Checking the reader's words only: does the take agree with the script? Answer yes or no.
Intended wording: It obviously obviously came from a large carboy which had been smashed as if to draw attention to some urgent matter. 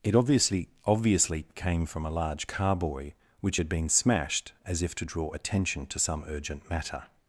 yes